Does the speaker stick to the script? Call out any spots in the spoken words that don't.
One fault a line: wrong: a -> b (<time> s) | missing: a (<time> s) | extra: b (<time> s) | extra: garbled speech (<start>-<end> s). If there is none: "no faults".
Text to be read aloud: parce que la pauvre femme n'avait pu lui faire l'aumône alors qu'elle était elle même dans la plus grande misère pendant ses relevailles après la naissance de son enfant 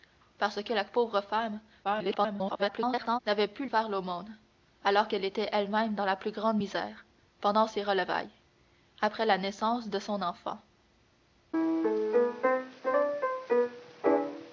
extra: garbled speech (1.8-3.2 s)
missing: lui (3.7 s)